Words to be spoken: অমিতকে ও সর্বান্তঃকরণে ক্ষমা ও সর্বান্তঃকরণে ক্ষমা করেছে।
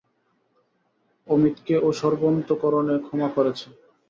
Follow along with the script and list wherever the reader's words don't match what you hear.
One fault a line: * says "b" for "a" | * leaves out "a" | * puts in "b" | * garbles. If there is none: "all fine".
* leaves out "ও সর্বান্তঃকরণে ক্ষমা"